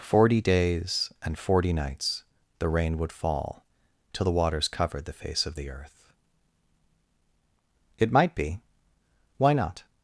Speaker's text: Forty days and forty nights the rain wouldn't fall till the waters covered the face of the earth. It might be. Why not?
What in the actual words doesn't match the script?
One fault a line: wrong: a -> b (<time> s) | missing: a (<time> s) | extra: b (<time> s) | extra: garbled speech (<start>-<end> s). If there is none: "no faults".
wrong: wouldn't -> would (3.0 s)